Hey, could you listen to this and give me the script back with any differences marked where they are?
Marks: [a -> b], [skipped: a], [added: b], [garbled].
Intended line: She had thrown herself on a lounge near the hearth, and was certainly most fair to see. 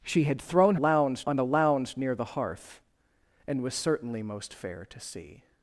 She had thrown [herself -> lounge] on a lounge near the hearth, and was certainly most fair to see.